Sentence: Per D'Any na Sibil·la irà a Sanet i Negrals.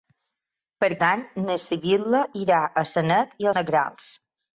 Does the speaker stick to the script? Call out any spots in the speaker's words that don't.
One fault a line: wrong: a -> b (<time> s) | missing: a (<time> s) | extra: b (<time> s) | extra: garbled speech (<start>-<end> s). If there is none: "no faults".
no faults